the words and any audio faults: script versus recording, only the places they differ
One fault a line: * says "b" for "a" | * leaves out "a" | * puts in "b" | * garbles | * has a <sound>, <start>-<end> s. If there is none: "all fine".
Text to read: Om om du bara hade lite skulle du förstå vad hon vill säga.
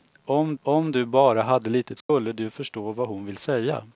* has a dropout, 2.0-2.1 s